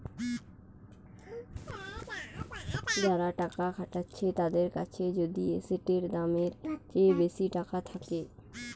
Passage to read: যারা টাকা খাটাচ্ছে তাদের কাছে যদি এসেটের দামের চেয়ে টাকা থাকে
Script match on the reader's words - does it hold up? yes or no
no